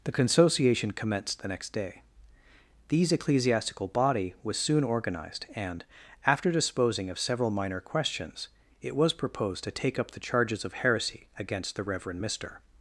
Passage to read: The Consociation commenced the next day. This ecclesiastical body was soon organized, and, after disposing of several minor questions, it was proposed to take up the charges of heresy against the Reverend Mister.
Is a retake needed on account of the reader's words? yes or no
yes